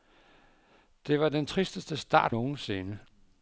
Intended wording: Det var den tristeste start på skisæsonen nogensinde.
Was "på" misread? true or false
true